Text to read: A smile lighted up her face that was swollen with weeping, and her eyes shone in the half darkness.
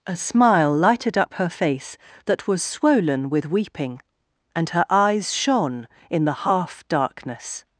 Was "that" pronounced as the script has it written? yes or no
yes